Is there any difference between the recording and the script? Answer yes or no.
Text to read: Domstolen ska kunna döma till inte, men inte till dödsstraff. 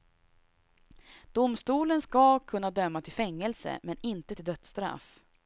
yes